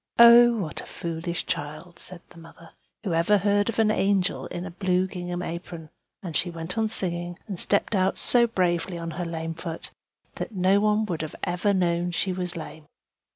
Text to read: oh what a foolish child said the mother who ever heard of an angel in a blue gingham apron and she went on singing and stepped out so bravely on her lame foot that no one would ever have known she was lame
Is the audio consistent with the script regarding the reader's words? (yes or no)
yes